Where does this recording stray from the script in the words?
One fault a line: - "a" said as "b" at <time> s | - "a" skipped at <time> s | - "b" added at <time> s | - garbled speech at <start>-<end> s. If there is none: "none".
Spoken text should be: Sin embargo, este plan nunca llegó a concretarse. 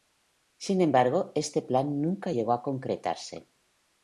none